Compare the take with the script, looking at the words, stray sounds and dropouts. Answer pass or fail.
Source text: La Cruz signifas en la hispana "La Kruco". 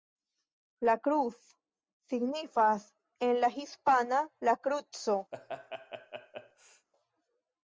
fail